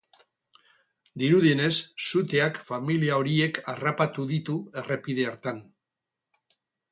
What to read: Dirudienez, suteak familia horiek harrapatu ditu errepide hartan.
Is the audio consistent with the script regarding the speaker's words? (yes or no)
yes